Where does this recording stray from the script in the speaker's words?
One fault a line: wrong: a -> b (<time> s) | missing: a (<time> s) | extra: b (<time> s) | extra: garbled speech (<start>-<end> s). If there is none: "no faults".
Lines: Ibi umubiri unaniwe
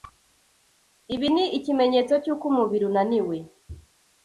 extra: ni ikimenyetso cy'uko (1.3 s)